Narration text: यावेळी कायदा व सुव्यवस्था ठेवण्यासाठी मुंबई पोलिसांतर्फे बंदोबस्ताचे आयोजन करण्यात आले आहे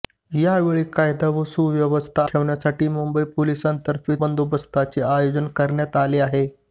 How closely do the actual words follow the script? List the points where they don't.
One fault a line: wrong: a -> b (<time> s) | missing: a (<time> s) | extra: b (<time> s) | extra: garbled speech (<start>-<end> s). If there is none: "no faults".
no faults